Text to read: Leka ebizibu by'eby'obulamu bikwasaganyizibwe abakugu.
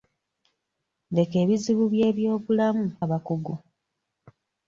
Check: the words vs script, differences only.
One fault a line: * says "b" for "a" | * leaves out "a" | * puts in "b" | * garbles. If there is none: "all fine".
* leaves out "bikwasaganyizibwe"